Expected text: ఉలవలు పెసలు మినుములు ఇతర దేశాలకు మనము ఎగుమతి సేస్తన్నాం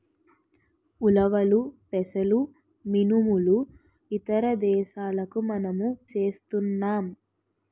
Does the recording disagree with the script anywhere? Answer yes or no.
yes